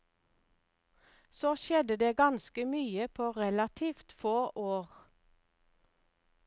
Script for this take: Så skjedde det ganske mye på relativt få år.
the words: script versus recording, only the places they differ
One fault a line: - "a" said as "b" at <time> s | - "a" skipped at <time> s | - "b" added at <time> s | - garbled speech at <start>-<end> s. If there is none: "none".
none